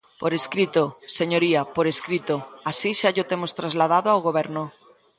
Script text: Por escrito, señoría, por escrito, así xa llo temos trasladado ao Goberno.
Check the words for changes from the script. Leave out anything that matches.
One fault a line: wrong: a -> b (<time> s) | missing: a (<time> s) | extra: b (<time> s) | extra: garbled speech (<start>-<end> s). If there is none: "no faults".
no faults